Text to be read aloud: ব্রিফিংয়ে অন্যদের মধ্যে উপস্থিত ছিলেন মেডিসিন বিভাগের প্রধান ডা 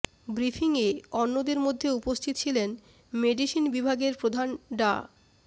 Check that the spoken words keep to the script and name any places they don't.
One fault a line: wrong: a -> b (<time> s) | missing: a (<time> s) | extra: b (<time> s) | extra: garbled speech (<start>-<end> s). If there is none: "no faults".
no faults